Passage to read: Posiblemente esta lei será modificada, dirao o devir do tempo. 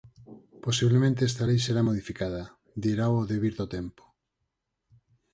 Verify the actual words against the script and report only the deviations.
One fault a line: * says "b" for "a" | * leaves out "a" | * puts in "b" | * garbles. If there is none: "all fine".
all fine